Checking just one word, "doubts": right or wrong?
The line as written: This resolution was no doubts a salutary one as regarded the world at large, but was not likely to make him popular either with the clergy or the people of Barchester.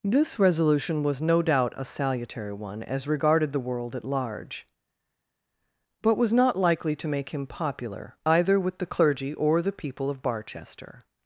wrong